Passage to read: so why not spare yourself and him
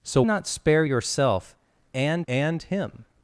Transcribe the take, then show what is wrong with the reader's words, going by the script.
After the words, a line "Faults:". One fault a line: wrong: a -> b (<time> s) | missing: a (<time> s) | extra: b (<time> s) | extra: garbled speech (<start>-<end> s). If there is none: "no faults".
so not spare yourself and and him
Faults:
missing: why (0.2 s)
extra: and (2.3 s)